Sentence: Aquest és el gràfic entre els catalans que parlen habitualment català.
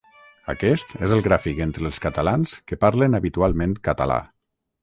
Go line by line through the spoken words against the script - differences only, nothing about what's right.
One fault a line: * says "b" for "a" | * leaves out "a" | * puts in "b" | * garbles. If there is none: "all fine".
all fine